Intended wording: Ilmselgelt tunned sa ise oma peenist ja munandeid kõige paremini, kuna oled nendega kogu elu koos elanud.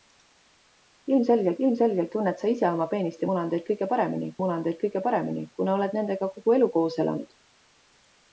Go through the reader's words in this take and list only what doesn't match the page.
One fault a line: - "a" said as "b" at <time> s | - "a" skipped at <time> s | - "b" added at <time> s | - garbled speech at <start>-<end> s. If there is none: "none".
- "ilmselgelt" added at 1.7 s
- "munandeid kõige paremini" added at 4.4 s